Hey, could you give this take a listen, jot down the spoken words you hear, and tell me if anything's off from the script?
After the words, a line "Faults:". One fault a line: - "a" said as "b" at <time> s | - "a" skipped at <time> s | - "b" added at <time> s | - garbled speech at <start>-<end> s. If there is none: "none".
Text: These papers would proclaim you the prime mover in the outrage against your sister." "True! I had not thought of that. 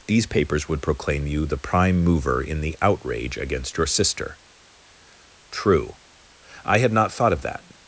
These papers would proclaim you the prime mover in the outrage against your sister." "True! I had not thought of that.
Faults:
none